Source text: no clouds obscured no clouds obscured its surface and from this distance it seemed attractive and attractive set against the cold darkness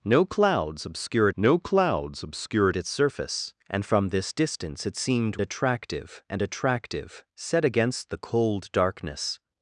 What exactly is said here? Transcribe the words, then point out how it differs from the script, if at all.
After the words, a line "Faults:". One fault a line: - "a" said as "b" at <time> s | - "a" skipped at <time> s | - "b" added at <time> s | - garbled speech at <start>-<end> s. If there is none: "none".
no clouds obscured no clouds obscured its surface and from this distance it seemed attractive and attractive set against the cold darkness
Faults:
none